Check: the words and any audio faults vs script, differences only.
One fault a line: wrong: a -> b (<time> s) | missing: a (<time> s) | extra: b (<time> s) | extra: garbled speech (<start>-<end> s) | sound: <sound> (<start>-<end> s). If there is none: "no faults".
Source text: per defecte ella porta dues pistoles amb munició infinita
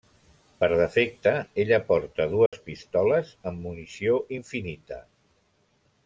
sound: dropout (2.5-2.5 s)